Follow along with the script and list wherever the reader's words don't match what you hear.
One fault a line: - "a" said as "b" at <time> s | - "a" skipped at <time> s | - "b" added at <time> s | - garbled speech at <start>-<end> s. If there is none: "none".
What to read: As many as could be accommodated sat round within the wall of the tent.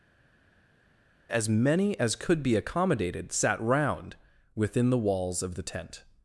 - "wall" said as "walls" at 5.0 s